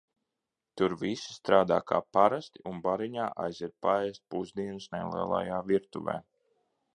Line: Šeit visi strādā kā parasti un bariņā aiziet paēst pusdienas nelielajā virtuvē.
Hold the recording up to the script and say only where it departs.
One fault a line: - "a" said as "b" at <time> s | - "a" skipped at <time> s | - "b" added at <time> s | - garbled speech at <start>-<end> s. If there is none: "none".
- "Šeit" said as "Tur" at 0.8 s